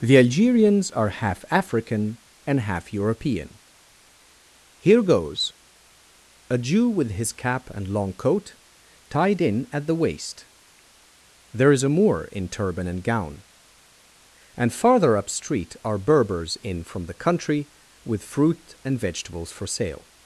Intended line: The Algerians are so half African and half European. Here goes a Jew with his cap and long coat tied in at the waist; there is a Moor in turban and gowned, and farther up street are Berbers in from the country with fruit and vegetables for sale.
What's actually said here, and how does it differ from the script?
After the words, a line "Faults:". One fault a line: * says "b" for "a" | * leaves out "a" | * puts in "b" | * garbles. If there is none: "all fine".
The Algerians are half African and half European. Here goes a Jew with his cap and long coat tied in at the waist; there is a Moor in turban and gown, and farther up street are Berbers in from the country with fruit and vegetables for sale.
Faults:
* leaves out "so"
* says "gown" for "gowned"